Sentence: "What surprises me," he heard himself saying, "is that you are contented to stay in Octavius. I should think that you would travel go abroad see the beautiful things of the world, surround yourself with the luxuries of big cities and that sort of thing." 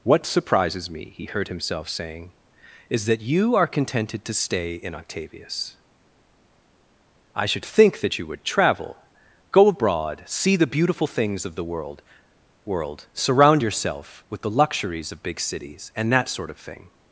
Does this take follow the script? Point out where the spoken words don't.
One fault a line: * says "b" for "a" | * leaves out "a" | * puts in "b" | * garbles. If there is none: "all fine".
* puts in "world"